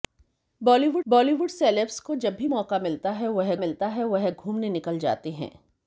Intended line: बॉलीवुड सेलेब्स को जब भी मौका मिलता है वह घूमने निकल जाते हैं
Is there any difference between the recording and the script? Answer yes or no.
yes